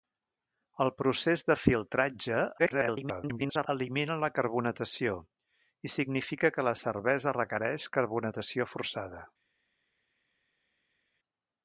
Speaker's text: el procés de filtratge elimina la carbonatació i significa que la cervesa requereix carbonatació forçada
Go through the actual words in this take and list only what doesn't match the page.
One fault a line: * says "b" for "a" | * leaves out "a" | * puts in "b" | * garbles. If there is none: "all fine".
* garbles